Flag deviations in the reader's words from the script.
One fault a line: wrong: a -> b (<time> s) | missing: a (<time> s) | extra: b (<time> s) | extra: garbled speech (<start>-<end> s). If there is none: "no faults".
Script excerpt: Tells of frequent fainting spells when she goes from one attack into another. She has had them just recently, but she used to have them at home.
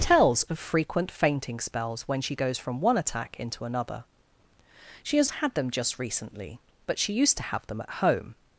no faults